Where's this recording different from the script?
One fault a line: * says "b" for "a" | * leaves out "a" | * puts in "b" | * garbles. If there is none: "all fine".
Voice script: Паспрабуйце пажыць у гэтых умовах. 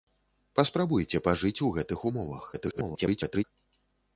* garbles